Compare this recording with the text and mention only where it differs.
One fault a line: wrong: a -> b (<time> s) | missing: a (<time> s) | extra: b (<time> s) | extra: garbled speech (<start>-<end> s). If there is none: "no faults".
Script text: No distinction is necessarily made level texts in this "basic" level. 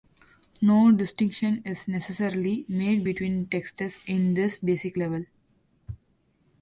wrong: level -> between (3.0 s)